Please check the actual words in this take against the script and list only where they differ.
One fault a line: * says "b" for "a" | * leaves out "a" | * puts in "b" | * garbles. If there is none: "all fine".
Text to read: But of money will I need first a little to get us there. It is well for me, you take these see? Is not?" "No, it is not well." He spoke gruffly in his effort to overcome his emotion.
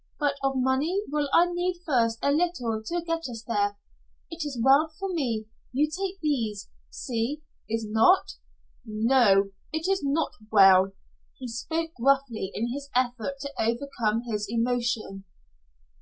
all fine